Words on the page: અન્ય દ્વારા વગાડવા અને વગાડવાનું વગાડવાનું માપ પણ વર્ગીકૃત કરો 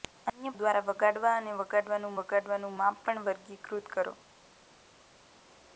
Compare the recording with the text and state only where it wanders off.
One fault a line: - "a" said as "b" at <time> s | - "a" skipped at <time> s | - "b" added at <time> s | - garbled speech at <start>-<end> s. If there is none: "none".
none